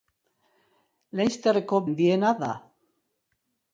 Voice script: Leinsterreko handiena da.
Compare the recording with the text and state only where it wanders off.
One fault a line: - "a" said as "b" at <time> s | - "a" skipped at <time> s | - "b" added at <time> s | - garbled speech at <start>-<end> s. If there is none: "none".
none